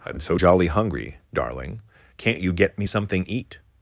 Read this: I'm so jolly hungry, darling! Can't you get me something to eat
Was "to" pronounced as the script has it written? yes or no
no